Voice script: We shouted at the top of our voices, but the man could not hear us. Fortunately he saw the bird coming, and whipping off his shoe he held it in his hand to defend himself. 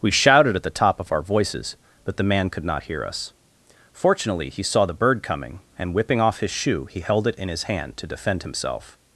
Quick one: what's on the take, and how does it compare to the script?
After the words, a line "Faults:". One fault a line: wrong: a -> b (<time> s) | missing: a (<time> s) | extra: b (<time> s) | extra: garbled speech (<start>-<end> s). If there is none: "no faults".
We shouted at the top of our voices, but the man could not hear us. Fortunately he saw the bird coming, and whipping off his shoe he held it in his hand to defend himself.
Faults:
no faults